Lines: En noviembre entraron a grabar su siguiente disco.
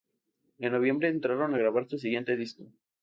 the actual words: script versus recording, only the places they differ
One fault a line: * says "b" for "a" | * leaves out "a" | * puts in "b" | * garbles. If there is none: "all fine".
all fine